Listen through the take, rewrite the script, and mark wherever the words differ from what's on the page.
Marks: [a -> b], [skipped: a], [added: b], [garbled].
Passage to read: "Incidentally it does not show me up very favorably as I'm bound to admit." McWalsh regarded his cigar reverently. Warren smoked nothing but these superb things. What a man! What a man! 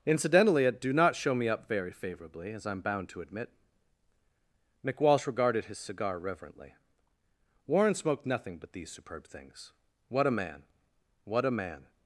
"Incidentally it [does -> do] not show me up very favorably as I'm bound to admit." McWalsh regarded his cigar reverently. Warren smoked nothing but these superb things. What a man! What a man!